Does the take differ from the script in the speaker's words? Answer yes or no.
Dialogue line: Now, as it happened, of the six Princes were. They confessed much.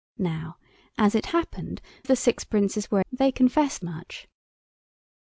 no